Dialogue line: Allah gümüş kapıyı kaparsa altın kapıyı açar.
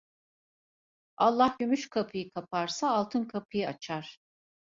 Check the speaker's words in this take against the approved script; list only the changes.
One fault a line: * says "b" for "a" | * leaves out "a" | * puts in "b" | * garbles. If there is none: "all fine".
all fine